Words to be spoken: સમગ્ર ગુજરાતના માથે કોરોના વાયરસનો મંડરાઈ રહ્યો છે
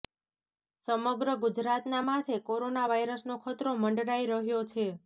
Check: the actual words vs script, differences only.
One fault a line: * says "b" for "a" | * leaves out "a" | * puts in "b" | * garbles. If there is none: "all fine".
* puts in "ખતરો"